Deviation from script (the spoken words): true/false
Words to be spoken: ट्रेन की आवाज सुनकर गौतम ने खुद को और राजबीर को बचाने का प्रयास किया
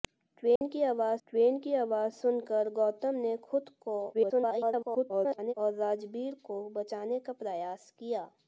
true